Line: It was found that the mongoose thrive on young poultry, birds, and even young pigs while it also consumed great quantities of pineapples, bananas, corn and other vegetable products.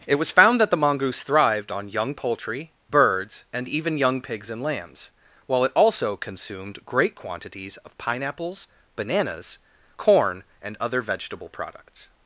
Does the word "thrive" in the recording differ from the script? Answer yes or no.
yes